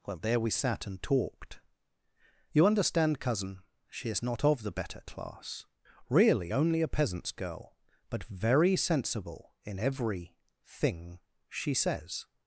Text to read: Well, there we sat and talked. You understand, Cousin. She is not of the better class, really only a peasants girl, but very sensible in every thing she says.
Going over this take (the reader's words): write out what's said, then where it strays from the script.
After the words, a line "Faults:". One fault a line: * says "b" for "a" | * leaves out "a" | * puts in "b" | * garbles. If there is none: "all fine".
Well, there we sat and talked. You understand, Cousin. She is not of the better class, really only a peasants girl, but very sensible in every thing she says.
Faults:
all fine